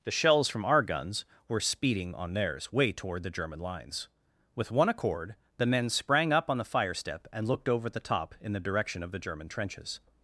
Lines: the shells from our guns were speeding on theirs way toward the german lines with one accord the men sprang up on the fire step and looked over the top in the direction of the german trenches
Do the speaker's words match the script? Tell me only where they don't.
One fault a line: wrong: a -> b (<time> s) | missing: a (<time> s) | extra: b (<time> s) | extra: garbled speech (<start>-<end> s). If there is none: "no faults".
no faults